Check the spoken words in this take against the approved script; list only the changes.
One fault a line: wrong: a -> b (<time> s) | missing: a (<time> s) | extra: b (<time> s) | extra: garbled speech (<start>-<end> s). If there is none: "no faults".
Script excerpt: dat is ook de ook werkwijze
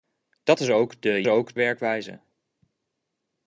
no faults